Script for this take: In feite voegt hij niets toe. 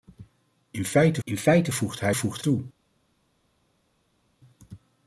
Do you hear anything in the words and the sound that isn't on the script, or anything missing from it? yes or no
yes